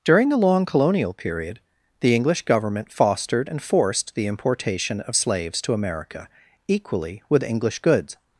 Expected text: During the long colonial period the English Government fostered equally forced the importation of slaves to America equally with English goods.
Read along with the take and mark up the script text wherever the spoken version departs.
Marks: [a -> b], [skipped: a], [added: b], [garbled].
During the long colonial period the English Government fostered [equally -> and] forced the importation of slaves to America equally with English goods.